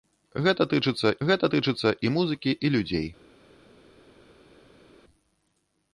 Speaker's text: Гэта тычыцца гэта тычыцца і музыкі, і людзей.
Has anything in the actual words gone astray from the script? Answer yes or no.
no